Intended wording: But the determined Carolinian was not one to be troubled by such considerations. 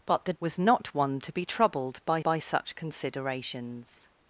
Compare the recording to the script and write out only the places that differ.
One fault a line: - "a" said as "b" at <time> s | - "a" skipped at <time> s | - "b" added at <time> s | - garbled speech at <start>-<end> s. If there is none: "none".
- "determined Carolinian" skipped at 0.3 s
- "by" added at 2.2 s